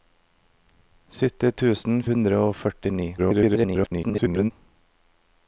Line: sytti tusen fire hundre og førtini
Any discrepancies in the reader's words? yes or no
yes